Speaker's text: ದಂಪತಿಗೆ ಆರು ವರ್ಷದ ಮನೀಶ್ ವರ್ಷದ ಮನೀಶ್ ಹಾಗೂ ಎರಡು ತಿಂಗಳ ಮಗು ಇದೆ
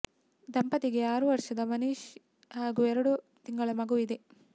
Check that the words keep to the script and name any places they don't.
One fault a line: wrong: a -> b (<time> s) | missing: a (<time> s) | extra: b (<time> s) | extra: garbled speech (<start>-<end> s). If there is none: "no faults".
missing: ವರ್ಷದ ಮನೀಶ್ (2.0 s)